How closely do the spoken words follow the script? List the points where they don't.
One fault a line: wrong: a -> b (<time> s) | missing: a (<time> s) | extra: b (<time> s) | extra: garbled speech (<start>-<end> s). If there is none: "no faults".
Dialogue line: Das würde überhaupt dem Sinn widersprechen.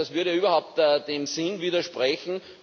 no faults